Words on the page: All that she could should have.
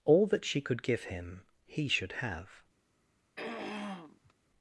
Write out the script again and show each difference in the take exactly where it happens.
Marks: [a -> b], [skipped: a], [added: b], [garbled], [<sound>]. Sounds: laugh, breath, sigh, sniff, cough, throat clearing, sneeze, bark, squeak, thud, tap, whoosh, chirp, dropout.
All that she could [added: give him he] should have. [throat clearing]